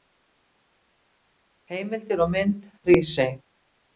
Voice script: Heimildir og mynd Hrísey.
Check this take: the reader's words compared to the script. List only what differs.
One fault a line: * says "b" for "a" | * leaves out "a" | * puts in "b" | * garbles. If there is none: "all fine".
all fine